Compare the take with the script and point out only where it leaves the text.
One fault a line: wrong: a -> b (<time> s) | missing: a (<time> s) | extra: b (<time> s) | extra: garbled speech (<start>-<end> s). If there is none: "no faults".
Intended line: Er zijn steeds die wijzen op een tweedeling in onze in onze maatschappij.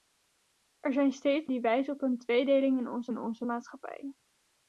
no faults